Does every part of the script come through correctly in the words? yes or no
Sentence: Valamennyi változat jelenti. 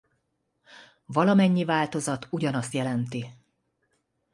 no